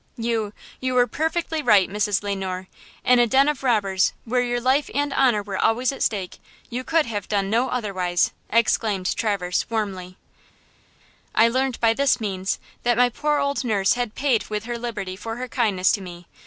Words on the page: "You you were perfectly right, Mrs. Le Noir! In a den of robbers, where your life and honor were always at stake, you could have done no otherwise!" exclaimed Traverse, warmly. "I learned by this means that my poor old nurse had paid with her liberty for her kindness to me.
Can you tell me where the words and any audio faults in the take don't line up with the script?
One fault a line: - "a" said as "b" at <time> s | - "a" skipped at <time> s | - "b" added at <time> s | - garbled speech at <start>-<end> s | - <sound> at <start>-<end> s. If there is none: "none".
none